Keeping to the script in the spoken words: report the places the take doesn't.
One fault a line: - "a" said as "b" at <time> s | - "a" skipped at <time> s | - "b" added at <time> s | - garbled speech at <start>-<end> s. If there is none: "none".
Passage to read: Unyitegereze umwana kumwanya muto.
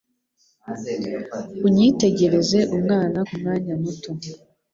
none